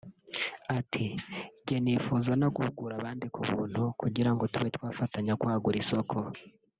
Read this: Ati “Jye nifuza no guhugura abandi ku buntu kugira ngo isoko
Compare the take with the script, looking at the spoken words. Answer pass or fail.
fail